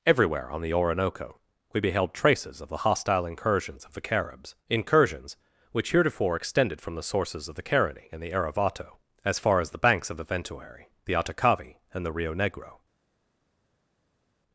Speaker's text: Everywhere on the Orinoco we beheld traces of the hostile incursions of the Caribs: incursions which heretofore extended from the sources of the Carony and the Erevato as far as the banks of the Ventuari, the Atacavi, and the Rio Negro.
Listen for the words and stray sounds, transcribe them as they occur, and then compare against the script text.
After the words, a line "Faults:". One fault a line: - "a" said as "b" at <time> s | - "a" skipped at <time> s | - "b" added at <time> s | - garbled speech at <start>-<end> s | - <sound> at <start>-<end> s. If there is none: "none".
Everywhere on the Orinoco we beheld traces of the hostile incursions of the Caribs: incursions which heretofore extended from the sources of the Carony and the Erevato as far as the banks of the Ventuari, the Atacavi, and the Rio Negro.
Faults:
none